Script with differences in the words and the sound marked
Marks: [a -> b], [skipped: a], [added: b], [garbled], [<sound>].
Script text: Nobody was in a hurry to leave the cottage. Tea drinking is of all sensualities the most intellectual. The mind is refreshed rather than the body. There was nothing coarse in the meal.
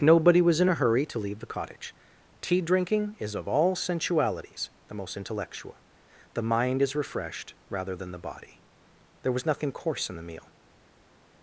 Nobody was in a hurry to leave the cottage. Tea drinking is of all sensualities the most intellectual. The mind is refreshed rather than the body. There was nothing coarse in the meal.